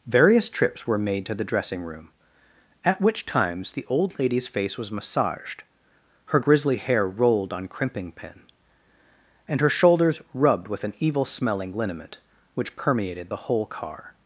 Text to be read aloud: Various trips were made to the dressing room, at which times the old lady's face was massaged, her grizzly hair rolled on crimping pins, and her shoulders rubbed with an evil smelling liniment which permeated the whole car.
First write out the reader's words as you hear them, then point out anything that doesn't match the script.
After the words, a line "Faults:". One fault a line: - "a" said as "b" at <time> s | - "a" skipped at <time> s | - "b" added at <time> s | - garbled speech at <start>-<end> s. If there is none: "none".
Various trips were made to the dressing room, at which times the old lady's face was massaged, her grizzly hair rolled on crimping pin, and her shoulders rubbed with an evil smelling liniment which permeated the whole car.
Faults:
- "pins" said as "pin" at 8.1 s